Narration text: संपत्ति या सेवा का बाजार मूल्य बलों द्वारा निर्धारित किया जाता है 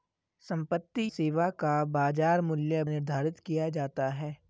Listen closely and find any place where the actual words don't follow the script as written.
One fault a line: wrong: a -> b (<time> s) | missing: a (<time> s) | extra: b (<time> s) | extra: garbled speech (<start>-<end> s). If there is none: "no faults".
missing: या (1.0 s)
missing: बलों द्वारा (2.8 s)